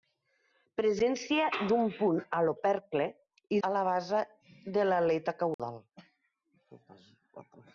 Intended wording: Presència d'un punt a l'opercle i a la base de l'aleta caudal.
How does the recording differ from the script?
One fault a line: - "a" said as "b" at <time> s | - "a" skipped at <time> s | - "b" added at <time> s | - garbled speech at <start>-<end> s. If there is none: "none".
none